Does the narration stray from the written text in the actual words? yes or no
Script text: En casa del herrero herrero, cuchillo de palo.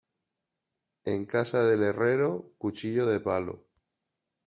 yes